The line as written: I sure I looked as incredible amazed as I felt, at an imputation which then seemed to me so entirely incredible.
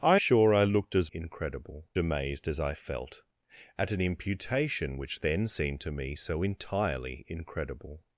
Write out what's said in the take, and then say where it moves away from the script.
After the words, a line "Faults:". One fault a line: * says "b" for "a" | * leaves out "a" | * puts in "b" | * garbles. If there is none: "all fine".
I sure I looked as incredible amazed as I felt, at an imputation which then seemed to me so entirely incredible.
Faults:
all fine